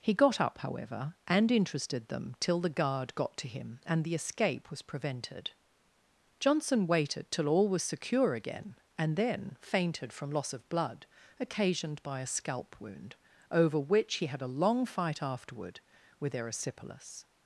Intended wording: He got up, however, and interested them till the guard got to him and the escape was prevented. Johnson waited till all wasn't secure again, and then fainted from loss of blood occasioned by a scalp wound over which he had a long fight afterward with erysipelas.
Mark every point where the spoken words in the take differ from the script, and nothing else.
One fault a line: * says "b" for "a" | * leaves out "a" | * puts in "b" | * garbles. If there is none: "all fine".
* says "was" for "wasn't"